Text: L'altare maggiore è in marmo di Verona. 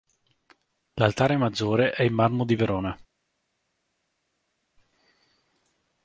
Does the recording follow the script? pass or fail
pass